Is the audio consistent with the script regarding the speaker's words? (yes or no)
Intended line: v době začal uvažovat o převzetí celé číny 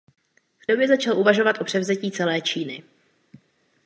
yes